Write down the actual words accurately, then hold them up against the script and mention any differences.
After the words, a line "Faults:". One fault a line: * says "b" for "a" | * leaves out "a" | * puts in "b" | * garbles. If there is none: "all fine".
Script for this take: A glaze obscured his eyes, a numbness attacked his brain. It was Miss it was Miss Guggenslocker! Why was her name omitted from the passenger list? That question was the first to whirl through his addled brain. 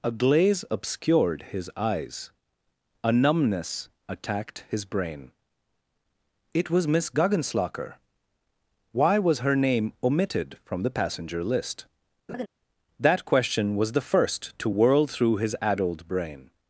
A glaze obscured his eyes, a numbness attacked his brain. It was Miss Guggenslocker! Why was her name omitted from the passenger list? That question was the first to whirl through his addled brain.
Faults:
* leaves out "it was Miss"